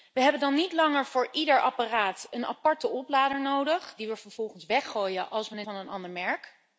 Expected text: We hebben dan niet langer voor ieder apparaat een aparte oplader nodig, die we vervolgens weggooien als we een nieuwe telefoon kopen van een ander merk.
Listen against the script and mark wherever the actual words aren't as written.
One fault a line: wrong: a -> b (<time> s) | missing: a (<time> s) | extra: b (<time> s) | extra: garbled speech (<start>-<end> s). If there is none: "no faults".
missing: nieuwe telefoon kopen (5.7 s)